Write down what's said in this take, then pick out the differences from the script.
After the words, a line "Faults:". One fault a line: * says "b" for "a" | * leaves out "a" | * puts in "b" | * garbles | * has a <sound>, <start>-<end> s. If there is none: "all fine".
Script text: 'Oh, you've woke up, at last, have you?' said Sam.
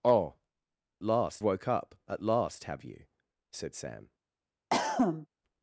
'Oh, last woke up, at last, have you?' said Sam.
Faults:
* says "last" for "you've"
* has a cough, 4.7-5.3 s